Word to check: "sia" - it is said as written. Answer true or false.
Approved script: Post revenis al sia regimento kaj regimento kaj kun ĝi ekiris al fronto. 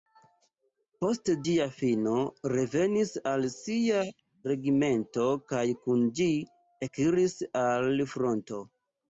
true